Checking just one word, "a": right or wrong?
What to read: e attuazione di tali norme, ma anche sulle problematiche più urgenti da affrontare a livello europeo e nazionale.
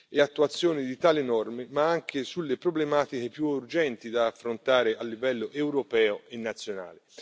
right